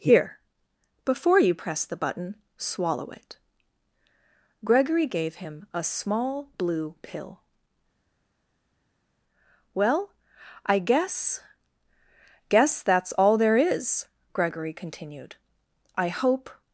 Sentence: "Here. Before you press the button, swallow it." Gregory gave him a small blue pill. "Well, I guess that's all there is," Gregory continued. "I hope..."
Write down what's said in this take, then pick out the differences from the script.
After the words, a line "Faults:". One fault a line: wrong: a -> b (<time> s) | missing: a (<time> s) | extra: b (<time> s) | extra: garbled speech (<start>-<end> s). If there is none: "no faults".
"Here. Before you press the button, swallow it." Gregory gave him a small blue pill. "Well, I guess guess that's all there is," Gregory continued. "I hope..."
Faults:
extra: guess (12.5 s)